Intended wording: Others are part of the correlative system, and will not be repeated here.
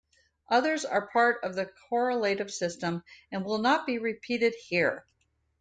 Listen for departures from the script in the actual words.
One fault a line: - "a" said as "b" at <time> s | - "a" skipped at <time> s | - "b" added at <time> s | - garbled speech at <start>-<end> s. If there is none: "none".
none